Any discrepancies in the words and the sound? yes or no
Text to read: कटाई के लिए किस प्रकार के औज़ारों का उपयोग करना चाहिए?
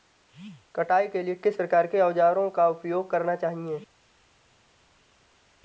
no